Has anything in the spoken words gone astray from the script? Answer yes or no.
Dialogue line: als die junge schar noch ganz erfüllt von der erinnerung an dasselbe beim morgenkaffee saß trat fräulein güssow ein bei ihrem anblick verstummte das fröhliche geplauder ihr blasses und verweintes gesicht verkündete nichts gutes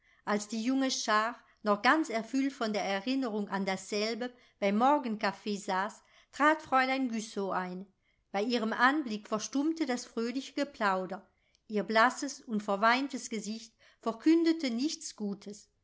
no